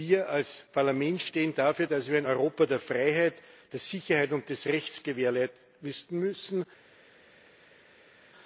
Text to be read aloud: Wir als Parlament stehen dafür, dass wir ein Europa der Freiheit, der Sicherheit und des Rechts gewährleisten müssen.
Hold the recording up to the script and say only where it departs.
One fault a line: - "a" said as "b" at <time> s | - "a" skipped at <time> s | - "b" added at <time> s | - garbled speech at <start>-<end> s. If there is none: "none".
none